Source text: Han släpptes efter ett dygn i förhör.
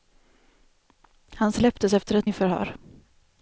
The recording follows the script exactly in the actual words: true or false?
false